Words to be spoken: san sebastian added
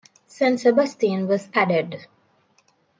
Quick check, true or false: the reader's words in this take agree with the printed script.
false